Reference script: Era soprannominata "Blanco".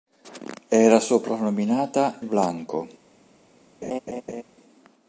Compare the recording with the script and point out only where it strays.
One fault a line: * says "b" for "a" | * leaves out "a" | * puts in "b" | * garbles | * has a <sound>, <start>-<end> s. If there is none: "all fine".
* has a laugh, 3.8-4.4 s